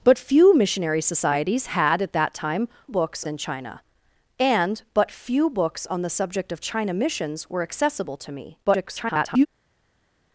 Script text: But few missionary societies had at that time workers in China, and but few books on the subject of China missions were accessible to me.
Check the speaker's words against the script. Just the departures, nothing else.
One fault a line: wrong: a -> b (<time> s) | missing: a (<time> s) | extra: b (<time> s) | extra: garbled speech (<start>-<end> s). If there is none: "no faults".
wrong: workers -> books (2.9 s)
extra: garbled speech (8.6-9.5 s)